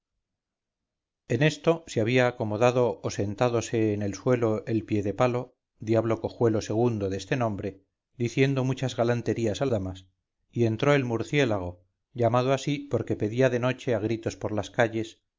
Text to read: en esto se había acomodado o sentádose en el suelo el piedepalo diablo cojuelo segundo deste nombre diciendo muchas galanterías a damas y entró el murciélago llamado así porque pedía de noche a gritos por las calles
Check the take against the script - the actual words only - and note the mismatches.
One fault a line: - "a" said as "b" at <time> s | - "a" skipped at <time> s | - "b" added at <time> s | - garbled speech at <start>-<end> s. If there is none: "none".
none